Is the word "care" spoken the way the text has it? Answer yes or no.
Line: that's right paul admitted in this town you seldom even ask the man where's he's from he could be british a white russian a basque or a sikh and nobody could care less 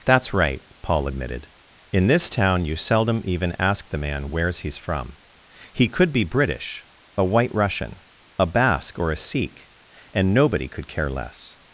yes